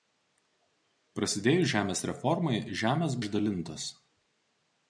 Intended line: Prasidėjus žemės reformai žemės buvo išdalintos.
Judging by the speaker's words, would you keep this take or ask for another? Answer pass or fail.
fail